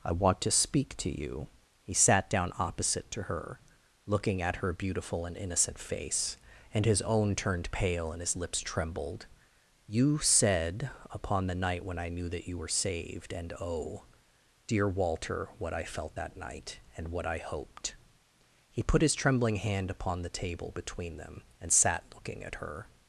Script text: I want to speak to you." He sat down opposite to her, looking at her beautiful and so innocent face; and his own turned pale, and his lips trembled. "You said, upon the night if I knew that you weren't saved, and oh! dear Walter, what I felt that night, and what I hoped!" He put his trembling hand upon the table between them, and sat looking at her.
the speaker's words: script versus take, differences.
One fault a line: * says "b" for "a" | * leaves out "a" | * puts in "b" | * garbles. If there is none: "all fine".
* leaves out "so"
* says "when" for "if"
* says "were" for "weren't"